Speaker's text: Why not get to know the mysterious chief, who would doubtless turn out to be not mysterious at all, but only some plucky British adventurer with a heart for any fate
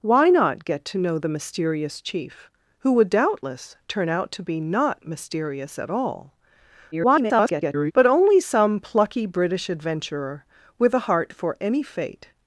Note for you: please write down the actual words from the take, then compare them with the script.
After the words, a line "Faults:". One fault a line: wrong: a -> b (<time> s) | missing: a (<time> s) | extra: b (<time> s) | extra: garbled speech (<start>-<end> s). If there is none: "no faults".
Why not get to know the mysterious chief, who would doubtless turn out to be not mysterious at all, [garbled] but only some plucky British adventurer with a heart for any fate
Faults:
extra: garbled speech (6.9-7.9 s)